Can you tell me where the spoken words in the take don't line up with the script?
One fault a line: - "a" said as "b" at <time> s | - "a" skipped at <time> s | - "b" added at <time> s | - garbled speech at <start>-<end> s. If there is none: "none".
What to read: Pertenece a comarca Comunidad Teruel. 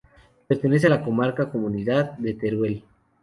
- "la" added at 0.9 s
- "de" added at 2.2 s